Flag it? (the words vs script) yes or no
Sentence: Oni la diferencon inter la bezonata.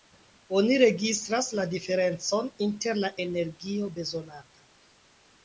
yes